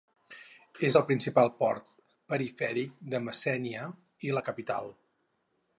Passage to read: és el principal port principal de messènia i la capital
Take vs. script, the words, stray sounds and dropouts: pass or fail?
fail